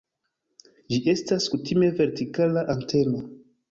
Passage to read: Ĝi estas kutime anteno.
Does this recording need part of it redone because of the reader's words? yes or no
yes